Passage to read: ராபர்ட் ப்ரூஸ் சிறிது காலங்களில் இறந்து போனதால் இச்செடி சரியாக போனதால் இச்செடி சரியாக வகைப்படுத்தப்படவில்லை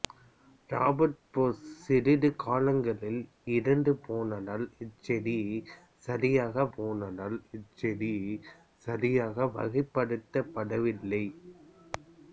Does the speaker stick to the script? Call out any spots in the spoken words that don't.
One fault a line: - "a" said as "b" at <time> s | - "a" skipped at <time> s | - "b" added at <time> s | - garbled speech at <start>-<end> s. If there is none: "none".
none